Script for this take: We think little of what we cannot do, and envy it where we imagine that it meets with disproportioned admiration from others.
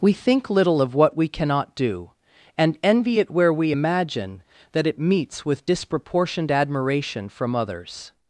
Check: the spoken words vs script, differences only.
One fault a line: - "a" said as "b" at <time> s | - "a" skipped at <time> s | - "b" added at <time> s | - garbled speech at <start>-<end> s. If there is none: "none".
none